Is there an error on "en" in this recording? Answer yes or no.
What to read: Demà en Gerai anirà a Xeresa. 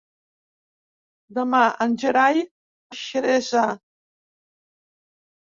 no